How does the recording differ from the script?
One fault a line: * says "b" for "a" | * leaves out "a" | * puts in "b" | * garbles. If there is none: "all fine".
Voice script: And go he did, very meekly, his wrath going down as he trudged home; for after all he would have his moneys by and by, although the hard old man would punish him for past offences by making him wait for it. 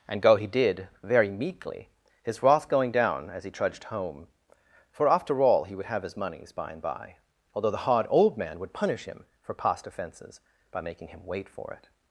all fine